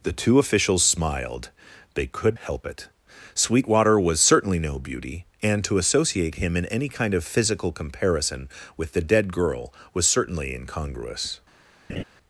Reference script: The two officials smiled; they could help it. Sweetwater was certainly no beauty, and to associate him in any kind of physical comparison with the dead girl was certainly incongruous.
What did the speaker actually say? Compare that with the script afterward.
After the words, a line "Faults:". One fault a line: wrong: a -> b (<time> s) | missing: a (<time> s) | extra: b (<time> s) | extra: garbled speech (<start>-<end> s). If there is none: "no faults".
The two officials smiled; they could help it. Sweetwater was certainly no beauty, and to associate him in any kind of physical comparison with the dead girl was certainly incongruous.
Faults:
no faults